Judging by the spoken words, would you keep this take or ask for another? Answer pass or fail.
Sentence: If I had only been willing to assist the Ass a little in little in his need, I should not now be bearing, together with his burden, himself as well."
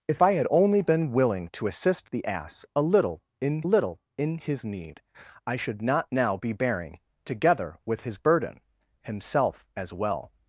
pass